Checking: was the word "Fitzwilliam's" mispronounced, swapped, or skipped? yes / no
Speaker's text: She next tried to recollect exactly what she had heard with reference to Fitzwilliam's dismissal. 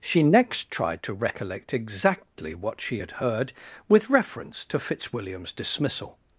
no